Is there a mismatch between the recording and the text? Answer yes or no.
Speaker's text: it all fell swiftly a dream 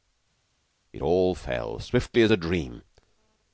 yes